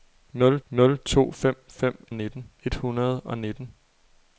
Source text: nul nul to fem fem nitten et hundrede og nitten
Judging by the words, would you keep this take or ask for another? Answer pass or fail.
pass